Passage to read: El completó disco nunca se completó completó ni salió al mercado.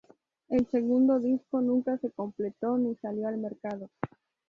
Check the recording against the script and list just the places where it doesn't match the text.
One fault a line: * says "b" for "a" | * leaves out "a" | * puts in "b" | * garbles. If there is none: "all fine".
* says "segundo" for "completó"
* leaves out "completó"